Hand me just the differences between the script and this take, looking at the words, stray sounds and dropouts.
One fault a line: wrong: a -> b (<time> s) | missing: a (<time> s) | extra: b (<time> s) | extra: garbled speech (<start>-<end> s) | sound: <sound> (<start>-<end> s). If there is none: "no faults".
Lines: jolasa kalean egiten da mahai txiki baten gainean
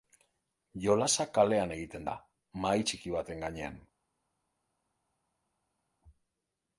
no faults